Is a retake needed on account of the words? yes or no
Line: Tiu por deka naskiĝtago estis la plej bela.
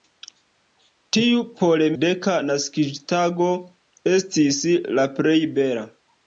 no